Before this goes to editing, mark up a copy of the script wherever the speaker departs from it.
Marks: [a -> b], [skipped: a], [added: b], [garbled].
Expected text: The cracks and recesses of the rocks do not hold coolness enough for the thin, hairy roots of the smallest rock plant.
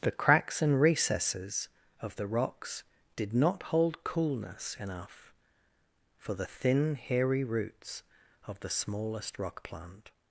The cracks and recesses of the rocks [do -> did] not hold coolness enough for the thin, hairy roots of the smallest rock plant.